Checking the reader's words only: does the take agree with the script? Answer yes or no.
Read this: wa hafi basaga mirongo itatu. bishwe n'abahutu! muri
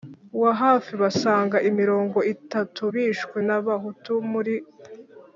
yes